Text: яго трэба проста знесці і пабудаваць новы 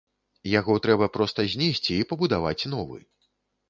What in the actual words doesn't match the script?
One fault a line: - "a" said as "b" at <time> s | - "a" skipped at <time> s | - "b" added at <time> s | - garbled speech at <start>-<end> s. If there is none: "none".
none